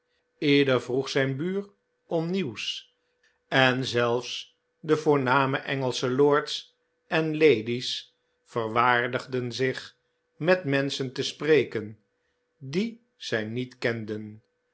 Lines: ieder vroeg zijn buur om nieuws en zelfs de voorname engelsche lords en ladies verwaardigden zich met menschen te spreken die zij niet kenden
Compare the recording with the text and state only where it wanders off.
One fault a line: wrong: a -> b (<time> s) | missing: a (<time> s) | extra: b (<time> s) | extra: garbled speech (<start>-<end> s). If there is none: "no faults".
no faults